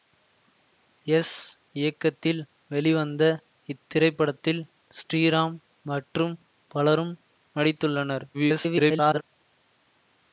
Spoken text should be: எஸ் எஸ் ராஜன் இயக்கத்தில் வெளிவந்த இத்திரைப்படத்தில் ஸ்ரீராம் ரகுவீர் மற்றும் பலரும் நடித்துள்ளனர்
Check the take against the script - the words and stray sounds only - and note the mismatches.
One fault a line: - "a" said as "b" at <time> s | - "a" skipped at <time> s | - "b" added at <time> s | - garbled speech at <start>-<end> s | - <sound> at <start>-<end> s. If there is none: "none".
- "எஸ் ராஜன்" skipped at 1.3 s
- "ரகுவீர்" skipped at 5.5 s
- garbled speech at 8.3-9.2 s